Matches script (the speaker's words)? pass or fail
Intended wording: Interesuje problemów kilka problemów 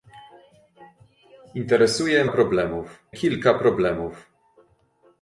pass